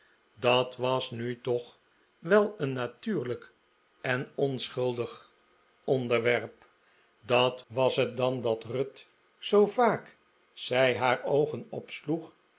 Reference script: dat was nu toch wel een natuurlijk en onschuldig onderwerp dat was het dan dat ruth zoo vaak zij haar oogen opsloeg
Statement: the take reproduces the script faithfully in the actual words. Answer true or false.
true